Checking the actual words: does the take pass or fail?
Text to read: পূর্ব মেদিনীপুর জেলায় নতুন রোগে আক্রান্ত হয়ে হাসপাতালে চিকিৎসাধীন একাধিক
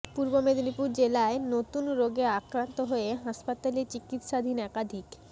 pass